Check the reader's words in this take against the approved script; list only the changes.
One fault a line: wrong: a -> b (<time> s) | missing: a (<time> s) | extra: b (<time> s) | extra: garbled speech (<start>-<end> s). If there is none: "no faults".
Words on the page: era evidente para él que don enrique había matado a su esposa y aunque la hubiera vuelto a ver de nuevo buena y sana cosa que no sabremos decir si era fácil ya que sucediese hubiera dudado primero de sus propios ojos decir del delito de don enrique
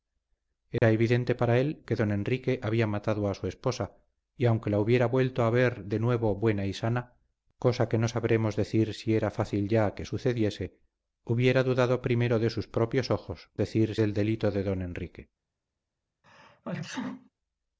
no faults